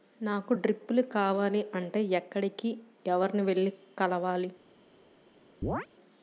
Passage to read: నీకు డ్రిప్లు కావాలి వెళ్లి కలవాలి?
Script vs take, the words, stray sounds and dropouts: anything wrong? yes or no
yes